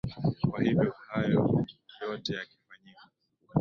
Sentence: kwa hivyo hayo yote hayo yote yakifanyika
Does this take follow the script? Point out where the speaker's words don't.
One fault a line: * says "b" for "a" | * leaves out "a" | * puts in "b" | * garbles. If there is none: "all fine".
* leaves out "hayo yote"